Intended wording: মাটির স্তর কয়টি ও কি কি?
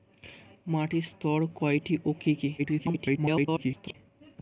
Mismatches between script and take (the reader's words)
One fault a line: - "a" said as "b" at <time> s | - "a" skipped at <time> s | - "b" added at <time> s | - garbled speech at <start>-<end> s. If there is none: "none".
- garbled speech at 2.6-3.9 s